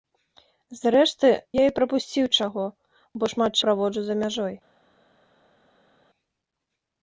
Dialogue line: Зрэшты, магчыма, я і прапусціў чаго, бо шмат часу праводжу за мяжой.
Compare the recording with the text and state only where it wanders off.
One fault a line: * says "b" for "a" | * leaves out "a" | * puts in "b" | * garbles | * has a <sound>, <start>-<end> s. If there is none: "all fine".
* leaves out "магчыма"
* leaves out "часу"